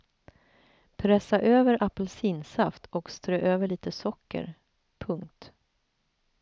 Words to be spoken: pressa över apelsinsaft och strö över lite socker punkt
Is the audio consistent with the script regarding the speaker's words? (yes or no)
yes